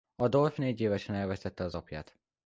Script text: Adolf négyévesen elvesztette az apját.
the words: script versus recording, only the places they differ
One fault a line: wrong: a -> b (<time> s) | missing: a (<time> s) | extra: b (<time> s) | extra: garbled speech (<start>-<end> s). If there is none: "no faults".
no faults